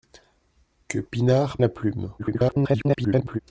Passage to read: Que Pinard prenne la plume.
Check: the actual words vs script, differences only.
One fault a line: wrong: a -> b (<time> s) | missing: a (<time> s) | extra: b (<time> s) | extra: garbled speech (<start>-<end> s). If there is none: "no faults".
missing: prenne (1.6 s)
extra: garbled speech (2.2-3.4 s)